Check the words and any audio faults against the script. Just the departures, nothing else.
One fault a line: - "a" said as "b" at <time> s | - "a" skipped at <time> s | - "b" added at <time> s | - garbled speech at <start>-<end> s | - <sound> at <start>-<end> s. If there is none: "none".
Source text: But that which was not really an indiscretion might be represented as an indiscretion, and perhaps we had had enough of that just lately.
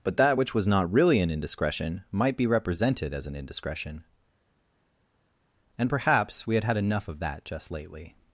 none